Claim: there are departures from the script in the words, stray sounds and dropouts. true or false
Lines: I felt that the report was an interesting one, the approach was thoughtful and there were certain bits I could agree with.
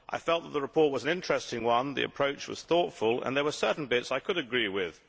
false